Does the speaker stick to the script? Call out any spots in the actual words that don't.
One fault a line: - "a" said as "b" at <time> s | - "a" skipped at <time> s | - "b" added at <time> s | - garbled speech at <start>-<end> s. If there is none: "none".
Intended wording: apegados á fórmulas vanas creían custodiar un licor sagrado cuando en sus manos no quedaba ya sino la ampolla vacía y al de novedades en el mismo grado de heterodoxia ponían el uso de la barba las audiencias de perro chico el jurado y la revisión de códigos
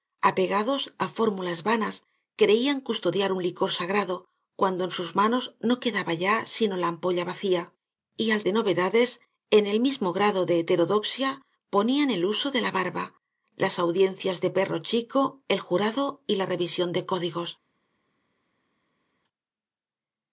none